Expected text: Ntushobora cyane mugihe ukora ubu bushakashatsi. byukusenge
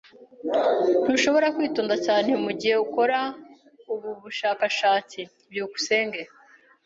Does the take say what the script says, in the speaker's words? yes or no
no